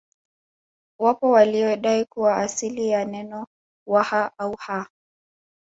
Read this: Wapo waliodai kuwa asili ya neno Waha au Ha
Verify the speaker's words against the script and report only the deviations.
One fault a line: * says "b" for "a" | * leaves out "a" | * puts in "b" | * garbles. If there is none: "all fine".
all fine